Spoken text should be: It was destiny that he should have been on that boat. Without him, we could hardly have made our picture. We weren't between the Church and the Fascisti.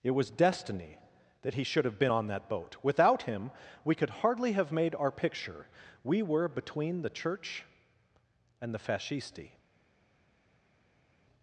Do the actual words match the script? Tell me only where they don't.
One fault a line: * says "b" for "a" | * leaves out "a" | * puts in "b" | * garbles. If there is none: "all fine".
* says "were" for "weren't"